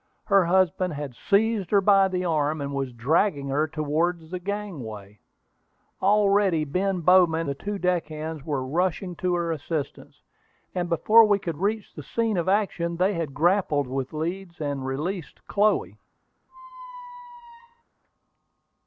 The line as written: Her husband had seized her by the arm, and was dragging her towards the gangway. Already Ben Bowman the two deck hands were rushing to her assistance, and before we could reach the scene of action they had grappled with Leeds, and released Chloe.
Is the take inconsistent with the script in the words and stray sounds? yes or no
yes